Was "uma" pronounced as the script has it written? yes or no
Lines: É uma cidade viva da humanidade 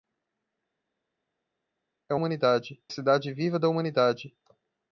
no